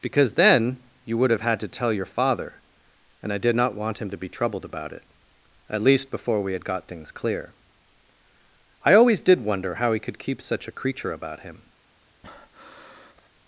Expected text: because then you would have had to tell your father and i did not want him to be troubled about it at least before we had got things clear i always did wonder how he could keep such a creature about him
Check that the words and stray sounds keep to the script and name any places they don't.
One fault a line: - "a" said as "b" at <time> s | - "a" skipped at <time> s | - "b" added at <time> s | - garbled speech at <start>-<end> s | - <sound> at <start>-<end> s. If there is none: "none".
- breath at 12.2-13.3 s